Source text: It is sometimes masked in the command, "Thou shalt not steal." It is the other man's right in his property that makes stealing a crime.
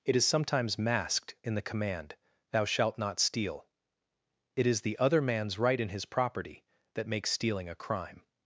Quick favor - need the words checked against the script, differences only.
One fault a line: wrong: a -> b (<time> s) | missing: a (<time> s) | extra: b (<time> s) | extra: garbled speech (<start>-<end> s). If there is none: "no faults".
no faults